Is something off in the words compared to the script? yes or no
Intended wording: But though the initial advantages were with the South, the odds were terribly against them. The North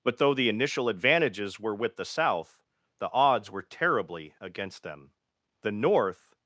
no